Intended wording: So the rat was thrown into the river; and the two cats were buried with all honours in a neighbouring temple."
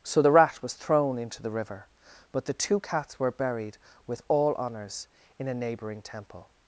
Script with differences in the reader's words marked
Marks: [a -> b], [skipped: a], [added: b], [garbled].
So the rat was thrown into the river; [and -> but] the two cats were buried with all honours in a neighbouring temple."